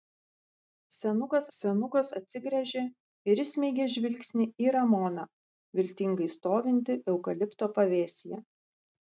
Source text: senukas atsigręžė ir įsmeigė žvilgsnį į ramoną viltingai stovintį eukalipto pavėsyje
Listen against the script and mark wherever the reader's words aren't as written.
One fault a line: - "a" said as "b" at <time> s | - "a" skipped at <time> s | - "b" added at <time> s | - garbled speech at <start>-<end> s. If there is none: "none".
- "senukas" added at 1.6 s